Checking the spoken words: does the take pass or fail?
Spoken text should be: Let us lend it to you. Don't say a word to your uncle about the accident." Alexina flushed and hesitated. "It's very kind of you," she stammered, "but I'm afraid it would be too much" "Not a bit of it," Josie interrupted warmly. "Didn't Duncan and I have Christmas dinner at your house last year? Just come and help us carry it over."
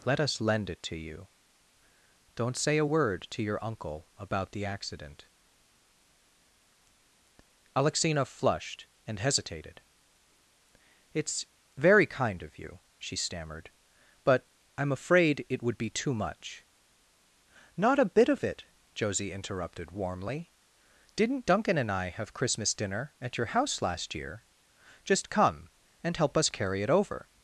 pass